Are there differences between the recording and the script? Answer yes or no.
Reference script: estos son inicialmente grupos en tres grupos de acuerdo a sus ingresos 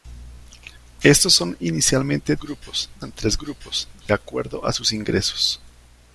no